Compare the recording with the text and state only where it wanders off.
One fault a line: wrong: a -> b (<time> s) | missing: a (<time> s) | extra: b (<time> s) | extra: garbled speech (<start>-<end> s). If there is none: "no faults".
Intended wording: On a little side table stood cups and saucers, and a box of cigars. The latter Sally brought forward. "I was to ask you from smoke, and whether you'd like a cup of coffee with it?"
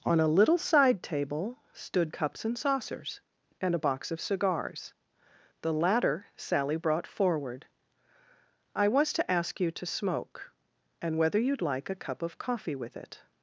wrong: from -> to (9.7 s)